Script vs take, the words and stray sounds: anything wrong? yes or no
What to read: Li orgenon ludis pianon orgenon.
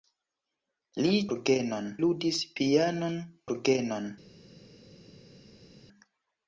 no